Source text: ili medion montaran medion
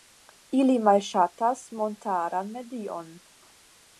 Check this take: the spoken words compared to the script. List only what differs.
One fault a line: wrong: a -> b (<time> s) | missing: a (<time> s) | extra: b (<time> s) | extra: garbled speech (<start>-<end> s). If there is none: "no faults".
wrong: medion -> malŝatas (0.9 s)